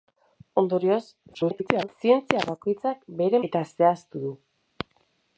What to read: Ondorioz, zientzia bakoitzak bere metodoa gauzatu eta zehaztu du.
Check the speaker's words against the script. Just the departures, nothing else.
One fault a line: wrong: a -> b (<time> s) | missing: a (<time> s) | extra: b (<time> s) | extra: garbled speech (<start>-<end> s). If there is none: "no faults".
extra: garbled speech (1.3-1.9 s)
missing: metodoa gauzatu (3.4 s)